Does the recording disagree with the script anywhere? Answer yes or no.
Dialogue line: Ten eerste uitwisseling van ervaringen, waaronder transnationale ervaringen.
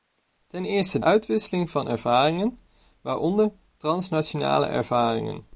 no